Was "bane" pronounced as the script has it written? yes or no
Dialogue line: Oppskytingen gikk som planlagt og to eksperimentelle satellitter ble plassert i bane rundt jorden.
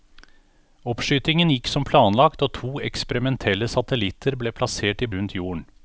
no